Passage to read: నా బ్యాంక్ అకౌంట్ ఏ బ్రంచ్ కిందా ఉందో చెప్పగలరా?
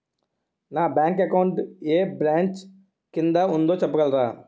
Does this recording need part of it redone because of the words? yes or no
no